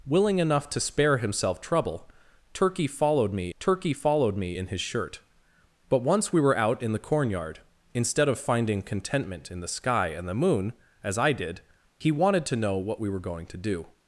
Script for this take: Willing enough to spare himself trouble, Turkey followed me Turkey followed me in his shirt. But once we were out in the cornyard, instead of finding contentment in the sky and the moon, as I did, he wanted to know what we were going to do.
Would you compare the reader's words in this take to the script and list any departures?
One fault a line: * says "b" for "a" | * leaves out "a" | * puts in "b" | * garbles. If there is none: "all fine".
all fine